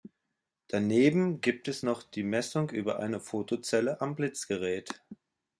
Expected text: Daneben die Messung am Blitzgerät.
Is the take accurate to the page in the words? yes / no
no